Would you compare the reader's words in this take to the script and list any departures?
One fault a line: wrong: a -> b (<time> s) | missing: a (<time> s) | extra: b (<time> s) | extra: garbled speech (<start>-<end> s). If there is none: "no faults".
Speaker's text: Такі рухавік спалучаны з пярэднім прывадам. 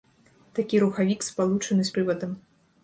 missing: пярэднім (1.9 s)